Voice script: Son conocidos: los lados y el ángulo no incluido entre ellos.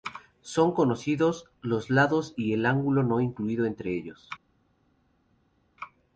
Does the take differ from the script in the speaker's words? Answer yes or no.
no